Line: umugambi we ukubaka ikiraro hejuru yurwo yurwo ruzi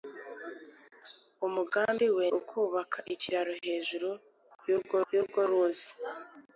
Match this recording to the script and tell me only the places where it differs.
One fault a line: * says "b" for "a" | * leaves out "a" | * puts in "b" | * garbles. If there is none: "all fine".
all fine